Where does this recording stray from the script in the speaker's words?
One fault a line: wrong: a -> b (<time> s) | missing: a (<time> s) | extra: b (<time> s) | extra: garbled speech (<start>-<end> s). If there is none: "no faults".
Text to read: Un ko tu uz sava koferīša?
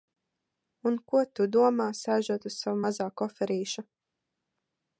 extra: domā sēžot (1.6 s)
extra: mazā (2.9 s)